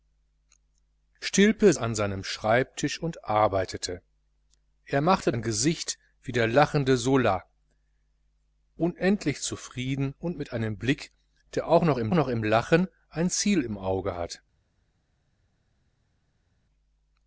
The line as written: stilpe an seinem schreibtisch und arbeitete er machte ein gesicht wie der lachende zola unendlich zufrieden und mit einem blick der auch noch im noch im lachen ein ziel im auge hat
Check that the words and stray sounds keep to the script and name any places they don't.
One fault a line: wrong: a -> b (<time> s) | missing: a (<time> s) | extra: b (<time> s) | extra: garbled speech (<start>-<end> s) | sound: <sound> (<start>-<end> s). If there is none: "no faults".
no faults